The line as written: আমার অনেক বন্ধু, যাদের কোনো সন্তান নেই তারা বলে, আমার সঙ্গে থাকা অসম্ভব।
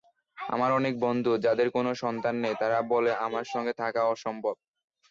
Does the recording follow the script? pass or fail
pass